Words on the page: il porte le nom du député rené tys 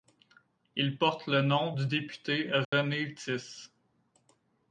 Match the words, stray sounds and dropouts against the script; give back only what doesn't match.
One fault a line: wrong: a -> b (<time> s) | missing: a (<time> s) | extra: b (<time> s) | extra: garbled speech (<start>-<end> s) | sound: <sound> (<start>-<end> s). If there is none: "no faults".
sound: dropout (2.6-2.7 s)